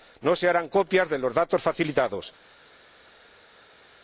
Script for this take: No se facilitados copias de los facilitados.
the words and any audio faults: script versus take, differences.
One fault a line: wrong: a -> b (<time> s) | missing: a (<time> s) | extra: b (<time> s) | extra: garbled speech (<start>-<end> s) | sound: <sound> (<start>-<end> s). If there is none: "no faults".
wrong: facilitados -> harán (0.5 s)
extra: datos (1.3 s)